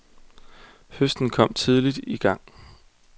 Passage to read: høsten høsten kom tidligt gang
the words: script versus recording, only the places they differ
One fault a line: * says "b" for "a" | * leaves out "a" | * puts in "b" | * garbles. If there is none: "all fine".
* leaves out "høsten"
* puts in "i"